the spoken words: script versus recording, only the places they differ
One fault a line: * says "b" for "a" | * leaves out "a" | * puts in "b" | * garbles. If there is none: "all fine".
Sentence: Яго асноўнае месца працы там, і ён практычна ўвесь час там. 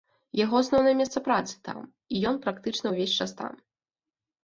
all fine